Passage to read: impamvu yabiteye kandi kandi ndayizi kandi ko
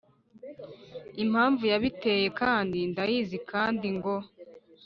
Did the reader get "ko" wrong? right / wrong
wrong